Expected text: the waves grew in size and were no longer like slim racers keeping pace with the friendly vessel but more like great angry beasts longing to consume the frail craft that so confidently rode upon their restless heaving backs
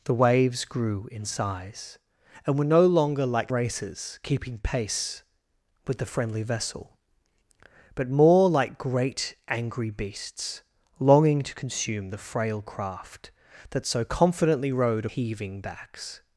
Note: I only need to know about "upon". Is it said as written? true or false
false